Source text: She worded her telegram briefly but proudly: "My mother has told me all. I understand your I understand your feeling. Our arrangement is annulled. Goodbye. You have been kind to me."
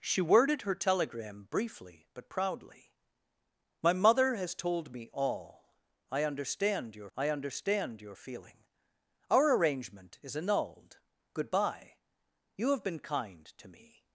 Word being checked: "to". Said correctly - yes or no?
yes